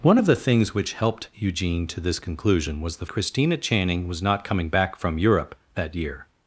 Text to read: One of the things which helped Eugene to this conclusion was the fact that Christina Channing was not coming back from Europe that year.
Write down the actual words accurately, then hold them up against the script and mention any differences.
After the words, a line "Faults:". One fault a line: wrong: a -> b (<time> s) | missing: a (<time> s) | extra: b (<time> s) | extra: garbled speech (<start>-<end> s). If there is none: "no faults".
One of the things which helped Eugene to this conclusion was the Christina Channing was not coming back from Europe that year.
Faults:
missing: fact that (3.0 s)